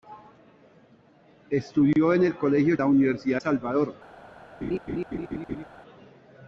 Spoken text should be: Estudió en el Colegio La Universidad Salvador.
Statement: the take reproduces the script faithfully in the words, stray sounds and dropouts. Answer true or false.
false